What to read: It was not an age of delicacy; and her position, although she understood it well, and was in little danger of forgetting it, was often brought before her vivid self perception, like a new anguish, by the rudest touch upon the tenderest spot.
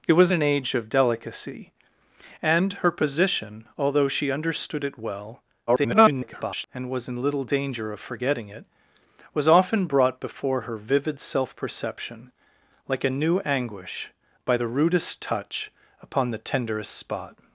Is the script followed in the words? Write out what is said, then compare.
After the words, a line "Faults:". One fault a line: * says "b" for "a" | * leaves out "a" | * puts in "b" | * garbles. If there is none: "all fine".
It was an age of delicacy; and her position, although she understood it well, [garbled] and was in little danger of forgetting it, was often brought before her vivid self perception, like a new anguish, by the rudest touch upon the tenderest spot.
Faults:
* leaves out "not"
* garbles